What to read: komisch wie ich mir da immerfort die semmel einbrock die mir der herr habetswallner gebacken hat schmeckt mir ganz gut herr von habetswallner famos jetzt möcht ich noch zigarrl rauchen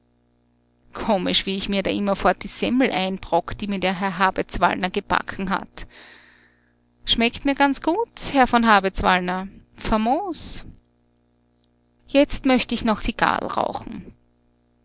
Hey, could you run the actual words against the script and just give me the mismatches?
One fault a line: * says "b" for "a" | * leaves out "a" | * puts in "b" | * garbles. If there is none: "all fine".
all fine